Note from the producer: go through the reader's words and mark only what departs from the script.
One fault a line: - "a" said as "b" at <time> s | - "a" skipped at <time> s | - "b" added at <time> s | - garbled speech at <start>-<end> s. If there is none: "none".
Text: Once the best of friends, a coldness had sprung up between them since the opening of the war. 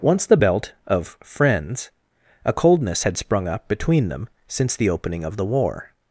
- "best" said as "belt" at 0.4 s